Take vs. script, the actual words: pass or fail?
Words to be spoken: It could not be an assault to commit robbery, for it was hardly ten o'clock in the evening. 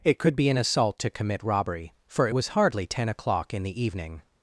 fail